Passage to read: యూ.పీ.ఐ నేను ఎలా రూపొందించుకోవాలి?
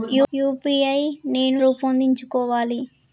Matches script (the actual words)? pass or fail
fail